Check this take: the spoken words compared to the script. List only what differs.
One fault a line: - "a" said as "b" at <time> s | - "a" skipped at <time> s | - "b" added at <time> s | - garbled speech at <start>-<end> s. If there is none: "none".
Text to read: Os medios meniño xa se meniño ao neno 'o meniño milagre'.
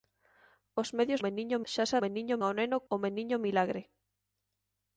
none